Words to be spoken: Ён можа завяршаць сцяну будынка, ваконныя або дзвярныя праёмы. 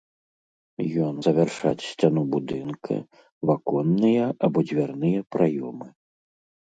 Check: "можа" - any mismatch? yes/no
yes